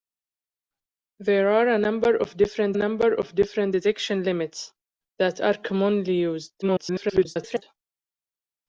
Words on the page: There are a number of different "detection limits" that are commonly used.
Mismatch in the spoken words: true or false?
true